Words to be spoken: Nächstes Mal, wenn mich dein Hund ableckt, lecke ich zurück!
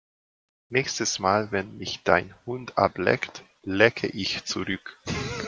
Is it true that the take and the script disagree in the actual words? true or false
false